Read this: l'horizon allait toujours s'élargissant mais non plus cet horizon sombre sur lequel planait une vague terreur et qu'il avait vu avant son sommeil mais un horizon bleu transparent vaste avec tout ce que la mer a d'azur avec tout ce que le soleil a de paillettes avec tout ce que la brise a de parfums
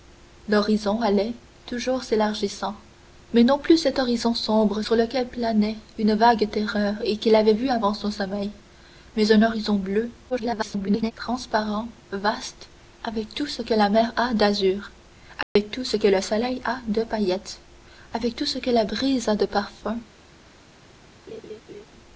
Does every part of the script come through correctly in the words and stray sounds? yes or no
no